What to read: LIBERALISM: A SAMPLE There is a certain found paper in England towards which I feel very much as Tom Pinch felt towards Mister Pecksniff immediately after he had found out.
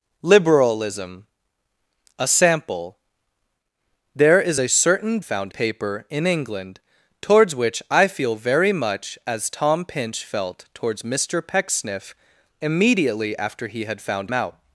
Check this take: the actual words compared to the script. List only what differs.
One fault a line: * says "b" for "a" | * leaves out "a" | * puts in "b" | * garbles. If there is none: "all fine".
all fine